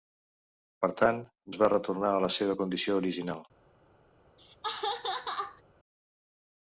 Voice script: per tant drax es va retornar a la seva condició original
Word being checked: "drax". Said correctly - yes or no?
no